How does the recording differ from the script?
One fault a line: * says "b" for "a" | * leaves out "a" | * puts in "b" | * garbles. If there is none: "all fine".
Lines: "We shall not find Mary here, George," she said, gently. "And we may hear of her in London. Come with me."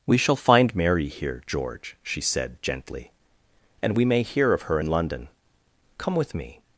* leaves out "not"